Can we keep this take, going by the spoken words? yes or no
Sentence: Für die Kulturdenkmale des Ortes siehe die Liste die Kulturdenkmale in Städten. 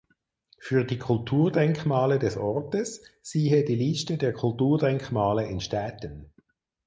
no